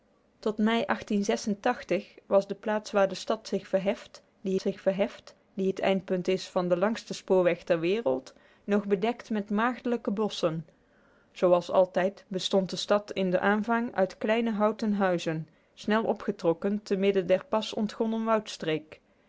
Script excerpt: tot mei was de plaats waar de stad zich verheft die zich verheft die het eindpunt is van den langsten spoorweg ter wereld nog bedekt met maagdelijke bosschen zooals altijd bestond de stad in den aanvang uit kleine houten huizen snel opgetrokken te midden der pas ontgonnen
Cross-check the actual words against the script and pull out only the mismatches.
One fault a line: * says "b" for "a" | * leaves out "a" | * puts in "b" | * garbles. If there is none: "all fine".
all fine